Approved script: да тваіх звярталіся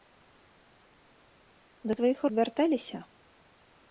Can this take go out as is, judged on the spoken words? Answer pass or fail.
pass